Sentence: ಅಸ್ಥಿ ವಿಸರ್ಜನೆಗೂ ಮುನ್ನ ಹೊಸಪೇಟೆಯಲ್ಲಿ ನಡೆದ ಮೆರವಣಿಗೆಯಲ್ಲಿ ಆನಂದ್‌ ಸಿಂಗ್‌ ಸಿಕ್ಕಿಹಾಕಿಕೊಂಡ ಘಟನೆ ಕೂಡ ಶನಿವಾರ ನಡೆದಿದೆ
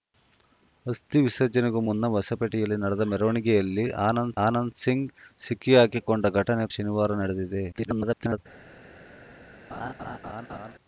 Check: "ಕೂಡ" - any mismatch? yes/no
yes